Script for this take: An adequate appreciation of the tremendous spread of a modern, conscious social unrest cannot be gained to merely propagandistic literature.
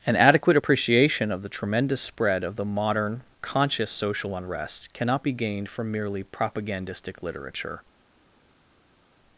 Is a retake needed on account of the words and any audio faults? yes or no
yes